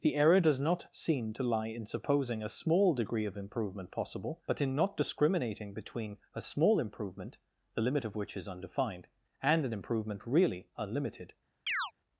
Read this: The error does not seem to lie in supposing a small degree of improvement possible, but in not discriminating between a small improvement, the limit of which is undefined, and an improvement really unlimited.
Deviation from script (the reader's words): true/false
false